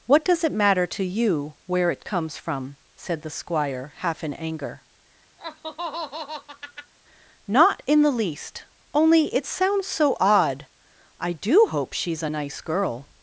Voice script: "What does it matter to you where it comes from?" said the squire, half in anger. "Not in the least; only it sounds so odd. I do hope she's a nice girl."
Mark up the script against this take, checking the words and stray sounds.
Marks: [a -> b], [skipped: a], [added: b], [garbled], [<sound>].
"What does it matter to you where it comes from?" said the squire, half in anger. [laugh] "Not in the least; only it sounds so odd. I do hope she's a nice girl."